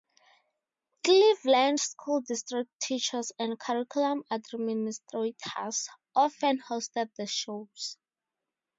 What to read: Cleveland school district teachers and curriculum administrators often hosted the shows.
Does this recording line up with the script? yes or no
yes